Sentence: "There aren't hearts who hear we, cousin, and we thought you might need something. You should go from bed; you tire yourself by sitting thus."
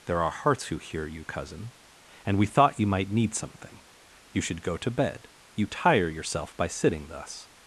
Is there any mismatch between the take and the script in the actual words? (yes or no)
yes